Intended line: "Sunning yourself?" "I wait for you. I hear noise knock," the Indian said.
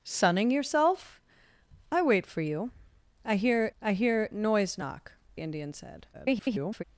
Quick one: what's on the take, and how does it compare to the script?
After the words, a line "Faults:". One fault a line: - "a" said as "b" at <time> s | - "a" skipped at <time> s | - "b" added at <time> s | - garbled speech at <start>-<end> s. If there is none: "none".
"Sunning yourself?" "I wait for you. I hear I hear noise knock," Indian said. [garbled]
Faults:
- "I hear" added at 3.8 s
- "the" skipped at 5.1 s
- garbled speech at 6.1-6.8 s